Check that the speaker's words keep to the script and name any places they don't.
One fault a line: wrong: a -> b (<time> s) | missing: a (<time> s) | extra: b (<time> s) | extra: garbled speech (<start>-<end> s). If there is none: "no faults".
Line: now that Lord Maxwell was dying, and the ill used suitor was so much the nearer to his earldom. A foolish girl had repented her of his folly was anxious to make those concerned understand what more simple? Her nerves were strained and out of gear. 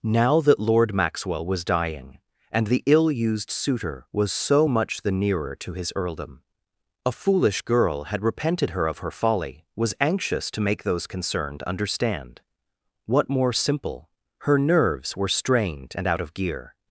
wrong: his -> her (9.0 s)